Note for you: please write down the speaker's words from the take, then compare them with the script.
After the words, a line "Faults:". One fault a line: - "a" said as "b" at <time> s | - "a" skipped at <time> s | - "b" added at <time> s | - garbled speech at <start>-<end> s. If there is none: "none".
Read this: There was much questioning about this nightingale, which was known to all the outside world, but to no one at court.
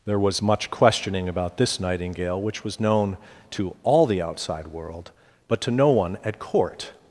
There was much questioning about this nightingale, which was known to all the outside world, but to no one at court.
Faults:
none